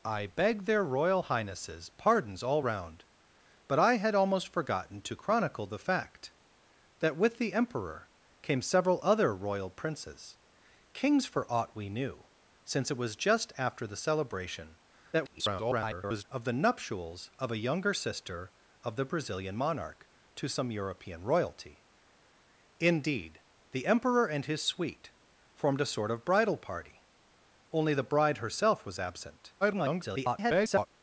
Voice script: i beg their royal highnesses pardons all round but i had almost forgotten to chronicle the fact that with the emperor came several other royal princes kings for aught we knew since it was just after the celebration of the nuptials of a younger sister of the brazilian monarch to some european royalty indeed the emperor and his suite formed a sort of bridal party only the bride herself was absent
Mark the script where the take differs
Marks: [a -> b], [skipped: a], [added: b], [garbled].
i beg their royal highnesses pardons all round but i had almost forgotten to chronicle the fact that with the emperor came several other royal princes kings for aught we knew since it was just after the celebration [garbled] of the nuptials of a younger sister of the brazilian monarch to some european royalty indeed the emperor and his suite formed a sort of bridal party only the bride herself was absent [garbled]